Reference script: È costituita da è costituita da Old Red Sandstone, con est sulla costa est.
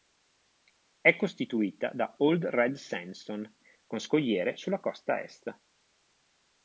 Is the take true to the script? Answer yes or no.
no